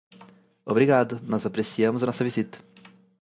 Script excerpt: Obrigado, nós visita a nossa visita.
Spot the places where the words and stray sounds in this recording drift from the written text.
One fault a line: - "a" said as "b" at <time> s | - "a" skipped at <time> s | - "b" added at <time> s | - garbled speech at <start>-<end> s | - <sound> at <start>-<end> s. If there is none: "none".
- "visita" said as "apreciamos" at 1.4 s